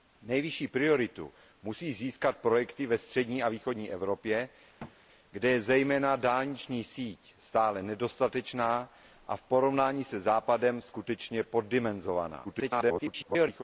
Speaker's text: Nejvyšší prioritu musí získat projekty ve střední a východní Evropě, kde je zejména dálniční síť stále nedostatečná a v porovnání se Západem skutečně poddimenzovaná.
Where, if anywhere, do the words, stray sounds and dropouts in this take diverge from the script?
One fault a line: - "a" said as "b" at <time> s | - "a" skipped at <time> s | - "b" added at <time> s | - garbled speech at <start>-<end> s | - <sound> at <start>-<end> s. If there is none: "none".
- thud at 4.8-5.0 s
- garbled speech at 12.4-13.6 s